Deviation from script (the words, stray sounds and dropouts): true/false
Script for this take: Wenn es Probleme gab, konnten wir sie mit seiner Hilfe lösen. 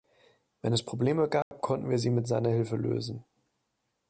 true